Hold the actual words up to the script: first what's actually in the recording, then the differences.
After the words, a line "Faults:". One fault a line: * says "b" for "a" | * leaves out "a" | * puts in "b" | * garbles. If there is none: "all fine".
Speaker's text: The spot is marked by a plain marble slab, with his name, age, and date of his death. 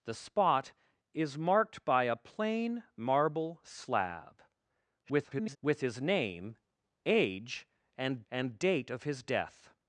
The spot is marked by a plain marble slab, [garbled] with his name, age, and and date of his death.
Faults:
* garbles
* puts in "and"